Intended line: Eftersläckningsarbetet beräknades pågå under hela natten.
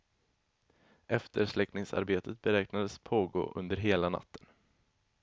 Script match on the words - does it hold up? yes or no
yes